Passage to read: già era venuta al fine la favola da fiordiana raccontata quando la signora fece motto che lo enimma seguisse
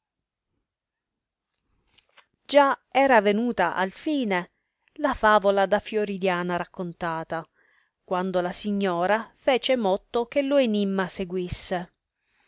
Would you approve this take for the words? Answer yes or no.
yes